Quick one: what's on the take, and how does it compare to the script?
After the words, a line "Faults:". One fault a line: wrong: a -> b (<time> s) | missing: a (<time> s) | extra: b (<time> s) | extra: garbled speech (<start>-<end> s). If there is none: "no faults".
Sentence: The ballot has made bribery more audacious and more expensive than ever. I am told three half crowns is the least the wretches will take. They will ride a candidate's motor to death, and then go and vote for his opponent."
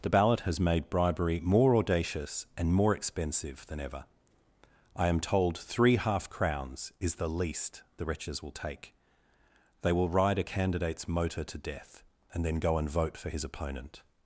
The ballot has made bribery more audacious and more expensive than ever. I am told three half crowns is the least the wretches will take. They will ride a candidate's motor to death, and then go and vote for his opponent."
Faults:
no faults